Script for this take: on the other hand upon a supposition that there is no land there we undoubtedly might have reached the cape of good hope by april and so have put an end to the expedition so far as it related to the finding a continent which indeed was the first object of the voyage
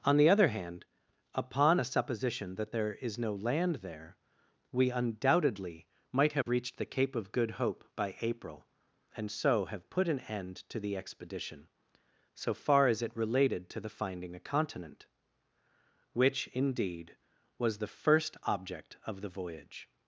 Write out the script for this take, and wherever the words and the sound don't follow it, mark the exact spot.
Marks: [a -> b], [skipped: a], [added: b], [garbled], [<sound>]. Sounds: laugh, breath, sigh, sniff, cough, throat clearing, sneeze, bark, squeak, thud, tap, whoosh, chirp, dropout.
on the other hand upon a supposition that there is no land there we undoubtedly might have [dropout] reached the cape of good hope by april and so have put an end to the expedition so far as it related to the finding a continent which indeed was the first object of the voyage